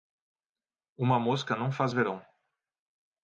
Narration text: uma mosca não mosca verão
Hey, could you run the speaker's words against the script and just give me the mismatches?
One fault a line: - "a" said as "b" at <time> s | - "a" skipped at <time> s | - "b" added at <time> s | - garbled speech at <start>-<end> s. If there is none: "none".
- "mosca" said as "faz" at 1.7 s